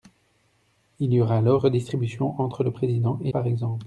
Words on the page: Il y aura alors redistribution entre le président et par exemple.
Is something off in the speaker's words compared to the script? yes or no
no